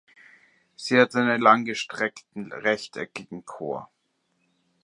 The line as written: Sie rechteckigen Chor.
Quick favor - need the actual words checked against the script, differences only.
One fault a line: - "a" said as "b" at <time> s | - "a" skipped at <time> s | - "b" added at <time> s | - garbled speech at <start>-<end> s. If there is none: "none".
- "hat einen langgestreckten" added at 1.0 s